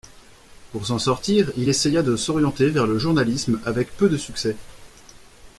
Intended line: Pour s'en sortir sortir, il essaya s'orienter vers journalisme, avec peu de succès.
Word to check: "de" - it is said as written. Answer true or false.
true